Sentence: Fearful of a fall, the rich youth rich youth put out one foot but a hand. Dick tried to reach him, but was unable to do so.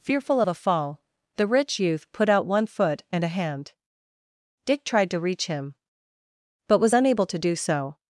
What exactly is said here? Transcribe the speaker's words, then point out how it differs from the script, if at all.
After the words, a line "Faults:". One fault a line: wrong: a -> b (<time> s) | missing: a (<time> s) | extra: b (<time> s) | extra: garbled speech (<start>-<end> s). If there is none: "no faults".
Fearful of a fall, the rich youth put out one foot and a hand. Dick tried to reach him, but was unable to do so.
Faults:
missing: rich youth (2.1 s)
wrong: but -> and (3.1 s)